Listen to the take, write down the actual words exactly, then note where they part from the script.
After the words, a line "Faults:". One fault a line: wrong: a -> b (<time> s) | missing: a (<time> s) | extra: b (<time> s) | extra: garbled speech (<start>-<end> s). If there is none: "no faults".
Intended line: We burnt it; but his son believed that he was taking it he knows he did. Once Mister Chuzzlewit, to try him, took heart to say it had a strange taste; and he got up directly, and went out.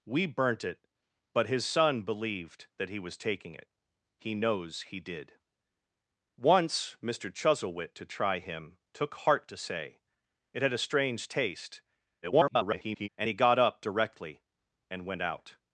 We burnt it; but his son believed that he was taking it he knows he did. Once Mister Chuzzlewit, to try him, took heart to say it had a strange taste; [garbled] and he got up directly, and went out.
Faults:
extra: garbled speech (12.2-13.1 s)